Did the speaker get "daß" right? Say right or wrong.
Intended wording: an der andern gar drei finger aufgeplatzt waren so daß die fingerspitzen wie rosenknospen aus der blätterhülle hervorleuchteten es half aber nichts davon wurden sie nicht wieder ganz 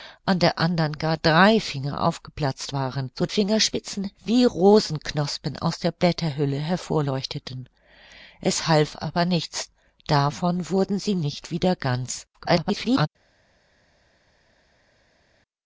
wrong